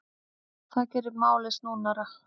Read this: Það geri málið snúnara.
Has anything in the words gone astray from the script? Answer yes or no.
no